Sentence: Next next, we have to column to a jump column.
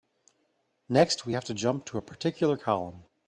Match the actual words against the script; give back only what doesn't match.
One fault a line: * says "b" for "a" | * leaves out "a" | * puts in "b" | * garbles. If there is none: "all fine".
* leaves out "next"
* says "jump" for "column"
* says "particular" for "jump"